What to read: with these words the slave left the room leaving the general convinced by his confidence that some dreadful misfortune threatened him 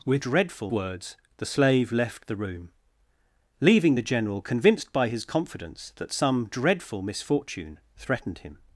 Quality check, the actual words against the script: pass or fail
fail